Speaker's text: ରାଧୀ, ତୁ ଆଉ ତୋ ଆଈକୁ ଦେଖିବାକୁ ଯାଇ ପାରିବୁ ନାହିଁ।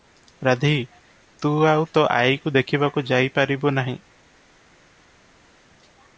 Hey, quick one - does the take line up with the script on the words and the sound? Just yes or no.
yes